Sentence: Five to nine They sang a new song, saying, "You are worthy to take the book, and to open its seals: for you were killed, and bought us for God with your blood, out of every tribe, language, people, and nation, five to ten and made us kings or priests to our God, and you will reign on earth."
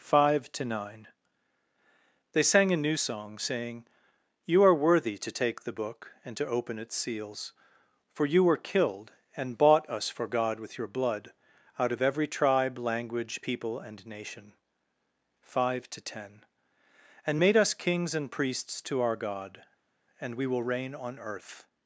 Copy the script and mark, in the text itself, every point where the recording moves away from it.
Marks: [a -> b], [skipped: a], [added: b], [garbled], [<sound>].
Five to nine They sang a new song, saying, "You are worthy to take the book, and to open its seals: for you were killed, and bought us for God with your blood, out of every tribe, language, people, and nation, five to ten and made us kings [or -> and] priests to our God, and [you -> we] will reign on earth."